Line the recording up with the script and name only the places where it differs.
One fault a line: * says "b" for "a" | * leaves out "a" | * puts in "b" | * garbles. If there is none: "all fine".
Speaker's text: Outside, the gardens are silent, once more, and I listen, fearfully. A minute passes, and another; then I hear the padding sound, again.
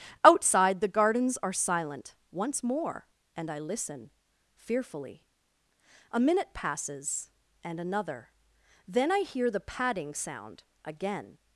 all fine